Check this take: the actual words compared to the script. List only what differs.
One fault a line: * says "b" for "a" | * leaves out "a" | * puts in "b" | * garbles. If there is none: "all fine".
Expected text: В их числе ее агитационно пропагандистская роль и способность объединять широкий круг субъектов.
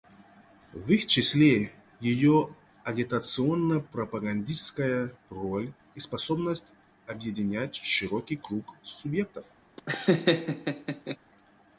all fine